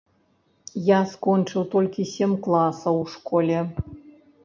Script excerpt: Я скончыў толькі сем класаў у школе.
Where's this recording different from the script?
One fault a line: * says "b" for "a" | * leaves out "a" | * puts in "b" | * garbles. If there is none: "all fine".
all fine